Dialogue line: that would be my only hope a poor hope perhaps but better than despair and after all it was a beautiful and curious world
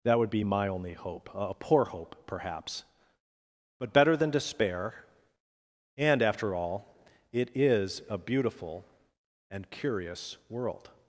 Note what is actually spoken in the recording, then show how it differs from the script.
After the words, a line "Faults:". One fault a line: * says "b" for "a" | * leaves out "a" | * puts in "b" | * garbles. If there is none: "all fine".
that would be my only hope a poor hope perhaps but better than despair and after all it is a beautiful and curious world
Faults:
* says "is" for "was"